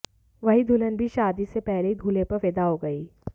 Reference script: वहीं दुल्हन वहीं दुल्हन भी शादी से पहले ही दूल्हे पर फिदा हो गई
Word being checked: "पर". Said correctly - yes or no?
yes